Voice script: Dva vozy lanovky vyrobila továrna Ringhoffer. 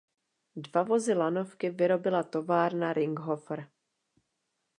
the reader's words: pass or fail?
pass